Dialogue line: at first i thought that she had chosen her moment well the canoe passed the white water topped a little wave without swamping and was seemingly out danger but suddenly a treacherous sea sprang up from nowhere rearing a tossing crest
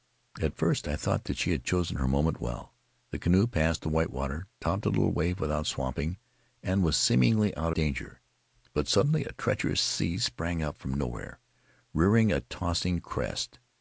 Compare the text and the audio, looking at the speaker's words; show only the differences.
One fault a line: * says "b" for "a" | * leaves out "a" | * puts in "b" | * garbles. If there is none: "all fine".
all fine